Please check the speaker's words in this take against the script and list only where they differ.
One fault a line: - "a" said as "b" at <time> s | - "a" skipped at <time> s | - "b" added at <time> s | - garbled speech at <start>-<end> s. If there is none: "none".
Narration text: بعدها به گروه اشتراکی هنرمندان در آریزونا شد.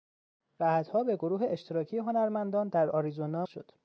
none